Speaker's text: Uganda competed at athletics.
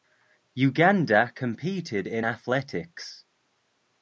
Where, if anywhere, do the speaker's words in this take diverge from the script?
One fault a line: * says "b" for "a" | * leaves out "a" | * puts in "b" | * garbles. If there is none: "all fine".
* says "in" for "at"